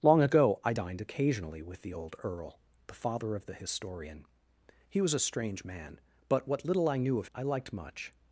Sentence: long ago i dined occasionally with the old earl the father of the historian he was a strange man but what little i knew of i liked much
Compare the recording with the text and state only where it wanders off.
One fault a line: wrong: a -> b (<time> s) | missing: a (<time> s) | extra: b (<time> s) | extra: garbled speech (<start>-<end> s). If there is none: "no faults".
no faults